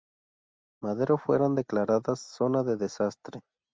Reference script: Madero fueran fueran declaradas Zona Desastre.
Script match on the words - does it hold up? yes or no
no